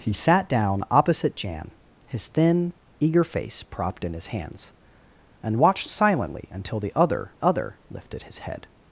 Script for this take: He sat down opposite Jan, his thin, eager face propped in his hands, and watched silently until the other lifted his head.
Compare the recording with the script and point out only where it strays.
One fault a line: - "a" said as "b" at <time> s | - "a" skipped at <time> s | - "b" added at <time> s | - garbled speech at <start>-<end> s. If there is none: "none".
- "other" added at 7.4 s